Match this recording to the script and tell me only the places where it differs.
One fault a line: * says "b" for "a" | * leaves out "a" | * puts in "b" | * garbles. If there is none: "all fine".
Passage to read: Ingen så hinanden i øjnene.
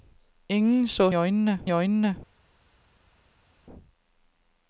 * says "øjnene" for "hinanden"